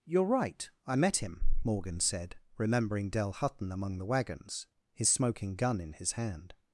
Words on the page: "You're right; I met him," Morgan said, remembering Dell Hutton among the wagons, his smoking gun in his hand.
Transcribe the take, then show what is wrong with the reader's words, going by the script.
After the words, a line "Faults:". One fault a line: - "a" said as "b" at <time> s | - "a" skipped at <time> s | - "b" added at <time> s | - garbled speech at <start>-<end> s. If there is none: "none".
"You're right; I met him," Morgan said, remembering Dell Hutton among the wagons, his smoking gun in his hand.
Faults:
none